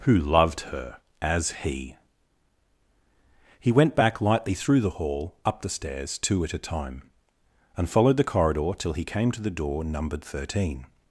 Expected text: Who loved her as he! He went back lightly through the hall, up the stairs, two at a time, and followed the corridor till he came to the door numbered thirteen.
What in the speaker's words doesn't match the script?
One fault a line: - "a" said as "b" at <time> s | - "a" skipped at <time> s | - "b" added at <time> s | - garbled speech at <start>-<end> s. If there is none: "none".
none